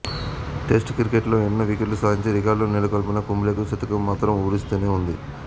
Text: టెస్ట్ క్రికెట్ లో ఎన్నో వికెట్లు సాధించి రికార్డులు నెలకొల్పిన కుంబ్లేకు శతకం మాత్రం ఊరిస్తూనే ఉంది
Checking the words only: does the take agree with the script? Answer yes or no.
yes